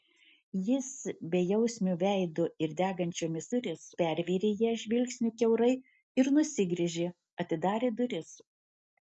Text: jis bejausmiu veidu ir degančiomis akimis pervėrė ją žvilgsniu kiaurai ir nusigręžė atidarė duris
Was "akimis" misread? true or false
true